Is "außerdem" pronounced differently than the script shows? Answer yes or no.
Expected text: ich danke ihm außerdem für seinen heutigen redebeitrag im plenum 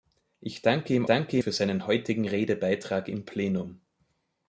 yes